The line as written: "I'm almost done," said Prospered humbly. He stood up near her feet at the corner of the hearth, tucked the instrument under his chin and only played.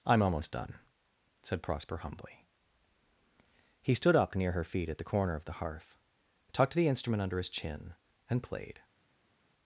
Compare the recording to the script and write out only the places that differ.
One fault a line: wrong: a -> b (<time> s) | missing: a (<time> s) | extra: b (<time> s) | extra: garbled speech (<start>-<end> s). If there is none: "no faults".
wrong: Prospered -> Prosper (1.6 s)
missing: only (8.4 s)